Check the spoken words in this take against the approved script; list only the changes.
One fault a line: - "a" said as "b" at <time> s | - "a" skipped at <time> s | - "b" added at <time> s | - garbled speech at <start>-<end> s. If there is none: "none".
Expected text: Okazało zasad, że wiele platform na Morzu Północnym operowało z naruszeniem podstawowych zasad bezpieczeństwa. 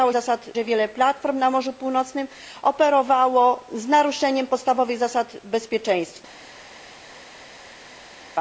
none